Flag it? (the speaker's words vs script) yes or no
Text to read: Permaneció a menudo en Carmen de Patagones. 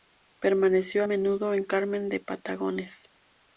no